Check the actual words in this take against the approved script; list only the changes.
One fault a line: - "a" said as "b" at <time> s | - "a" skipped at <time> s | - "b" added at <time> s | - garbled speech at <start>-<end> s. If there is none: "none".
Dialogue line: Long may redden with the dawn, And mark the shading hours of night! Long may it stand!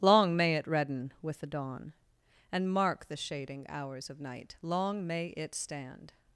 - "it" added at 0.6 s